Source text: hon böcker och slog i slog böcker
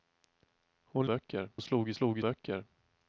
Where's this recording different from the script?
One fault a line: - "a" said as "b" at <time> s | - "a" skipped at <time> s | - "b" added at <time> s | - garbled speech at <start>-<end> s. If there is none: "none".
none